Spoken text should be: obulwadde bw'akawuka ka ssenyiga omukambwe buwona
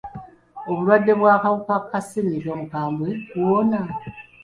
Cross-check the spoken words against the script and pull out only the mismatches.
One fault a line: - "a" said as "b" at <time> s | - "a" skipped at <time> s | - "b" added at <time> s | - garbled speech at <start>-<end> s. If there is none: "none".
none